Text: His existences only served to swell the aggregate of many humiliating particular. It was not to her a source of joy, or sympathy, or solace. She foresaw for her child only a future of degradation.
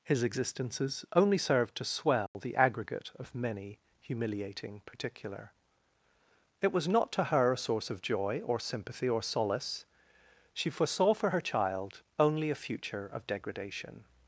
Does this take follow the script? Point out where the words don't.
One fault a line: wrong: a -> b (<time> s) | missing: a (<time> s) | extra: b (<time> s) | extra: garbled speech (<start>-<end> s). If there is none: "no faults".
no faults